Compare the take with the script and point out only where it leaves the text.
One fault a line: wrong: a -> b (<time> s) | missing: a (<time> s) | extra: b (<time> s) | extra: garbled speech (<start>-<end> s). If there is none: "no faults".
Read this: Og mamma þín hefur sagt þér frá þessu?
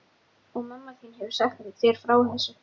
no faults